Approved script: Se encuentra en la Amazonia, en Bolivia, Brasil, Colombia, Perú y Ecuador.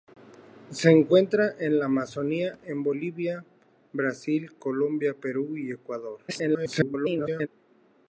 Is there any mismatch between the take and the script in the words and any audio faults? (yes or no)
yes